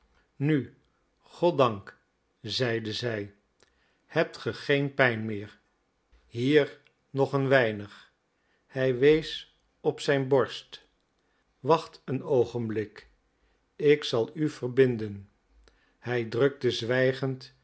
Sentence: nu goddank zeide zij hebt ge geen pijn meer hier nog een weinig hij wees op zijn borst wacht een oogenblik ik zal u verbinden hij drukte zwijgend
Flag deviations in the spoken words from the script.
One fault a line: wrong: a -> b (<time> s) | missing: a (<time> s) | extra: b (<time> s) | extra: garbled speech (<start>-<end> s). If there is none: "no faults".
no faults